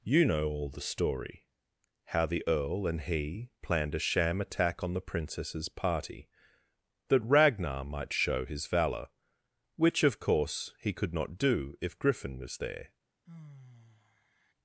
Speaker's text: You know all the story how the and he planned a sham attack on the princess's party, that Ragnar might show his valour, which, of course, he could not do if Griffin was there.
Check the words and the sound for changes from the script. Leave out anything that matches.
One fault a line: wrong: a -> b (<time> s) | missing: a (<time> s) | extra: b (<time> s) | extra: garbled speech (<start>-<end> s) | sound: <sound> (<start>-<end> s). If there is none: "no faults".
extra: earl (2.5 s)
sound: sigh (13.3-14.5 s)